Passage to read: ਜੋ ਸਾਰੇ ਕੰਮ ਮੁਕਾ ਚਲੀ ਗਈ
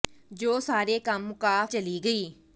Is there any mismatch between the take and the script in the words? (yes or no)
no